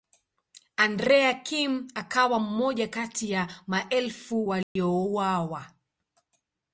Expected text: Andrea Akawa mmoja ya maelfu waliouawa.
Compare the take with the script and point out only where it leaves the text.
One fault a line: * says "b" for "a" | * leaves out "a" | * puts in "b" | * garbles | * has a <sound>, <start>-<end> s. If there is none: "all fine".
* puts in "Kim"
* puts in "kati"
* has a dropout, 4.6-4.8 s